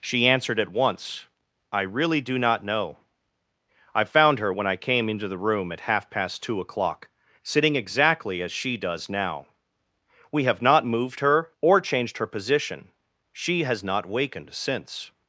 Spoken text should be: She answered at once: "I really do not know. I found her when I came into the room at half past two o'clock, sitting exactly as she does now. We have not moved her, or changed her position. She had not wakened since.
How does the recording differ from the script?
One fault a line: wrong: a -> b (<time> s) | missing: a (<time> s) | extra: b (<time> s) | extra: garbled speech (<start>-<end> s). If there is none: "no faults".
wrong: had -> has (13.6 s)